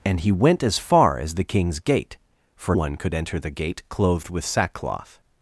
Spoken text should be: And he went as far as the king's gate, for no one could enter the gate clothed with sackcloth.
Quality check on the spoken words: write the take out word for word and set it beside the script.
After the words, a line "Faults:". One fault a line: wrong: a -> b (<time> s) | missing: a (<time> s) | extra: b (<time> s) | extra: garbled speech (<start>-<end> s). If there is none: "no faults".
And he went as far as the king's gate, for one could enter the gate clothed with sackcloth.
Faults:
missing: no (2.8 s)